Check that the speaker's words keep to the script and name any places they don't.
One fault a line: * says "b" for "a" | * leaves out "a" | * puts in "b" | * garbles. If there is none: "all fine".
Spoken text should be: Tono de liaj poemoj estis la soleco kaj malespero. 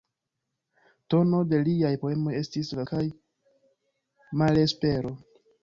* leaves out "soleco"